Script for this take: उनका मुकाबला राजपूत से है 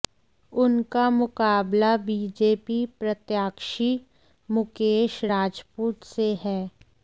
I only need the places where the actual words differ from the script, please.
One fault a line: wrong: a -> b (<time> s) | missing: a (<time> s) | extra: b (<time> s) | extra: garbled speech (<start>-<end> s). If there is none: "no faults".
extra: बीजेपी प्रत्याशी मुकेश (2.1 s)